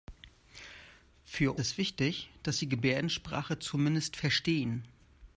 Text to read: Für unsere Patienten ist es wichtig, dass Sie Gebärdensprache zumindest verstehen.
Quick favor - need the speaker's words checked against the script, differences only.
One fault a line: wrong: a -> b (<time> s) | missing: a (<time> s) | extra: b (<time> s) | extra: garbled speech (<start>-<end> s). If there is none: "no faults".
missing: unsere Patienten ist (1.5 s)